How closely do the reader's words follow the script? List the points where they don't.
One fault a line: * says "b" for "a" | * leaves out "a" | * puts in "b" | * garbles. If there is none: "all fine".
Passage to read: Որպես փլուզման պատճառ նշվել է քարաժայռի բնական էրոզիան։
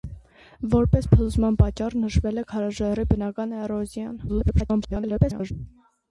* garbles